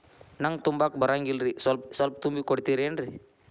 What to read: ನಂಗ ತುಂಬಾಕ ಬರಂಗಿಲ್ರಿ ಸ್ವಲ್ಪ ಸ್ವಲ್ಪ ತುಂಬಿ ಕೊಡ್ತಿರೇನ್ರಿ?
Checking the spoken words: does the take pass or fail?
pass